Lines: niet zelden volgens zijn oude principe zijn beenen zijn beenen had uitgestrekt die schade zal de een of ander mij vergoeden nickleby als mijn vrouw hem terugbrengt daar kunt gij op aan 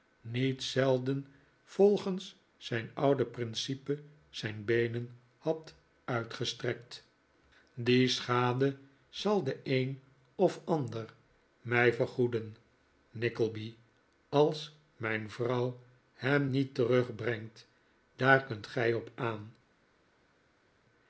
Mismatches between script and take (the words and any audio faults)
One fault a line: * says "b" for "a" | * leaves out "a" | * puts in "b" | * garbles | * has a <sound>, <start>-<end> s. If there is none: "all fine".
* leaves out "zijn beenen"
* puts in "niet"